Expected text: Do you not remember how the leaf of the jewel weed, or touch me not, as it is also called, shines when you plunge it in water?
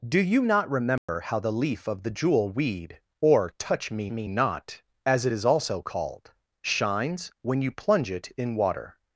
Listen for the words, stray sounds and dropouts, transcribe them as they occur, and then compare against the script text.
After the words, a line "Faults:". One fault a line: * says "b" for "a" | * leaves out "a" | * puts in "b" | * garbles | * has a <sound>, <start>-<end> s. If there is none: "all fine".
Do you not remember how the leaf of the jewel weed, or touch me me not, as it is also called, shines when you plunge it in water?
Faults:
* has a dropout, 1.0-1.1 s
* puts in "me"